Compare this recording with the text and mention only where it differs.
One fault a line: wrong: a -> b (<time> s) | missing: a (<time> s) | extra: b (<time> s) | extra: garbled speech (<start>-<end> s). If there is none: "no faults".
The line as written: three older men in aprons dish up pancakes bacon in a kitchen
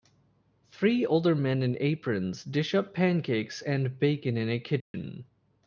extra: and (3.6 s)